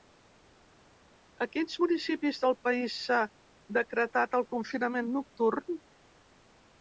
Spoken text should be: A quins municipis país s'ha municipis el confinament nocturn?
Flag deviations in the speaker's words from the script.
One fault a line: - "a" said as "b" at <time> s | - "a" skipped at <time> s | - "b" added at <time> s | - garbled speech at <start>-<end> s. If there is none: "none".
- "del" added at 2.4 s
- "municipis" said as "decretat" at 3.8 s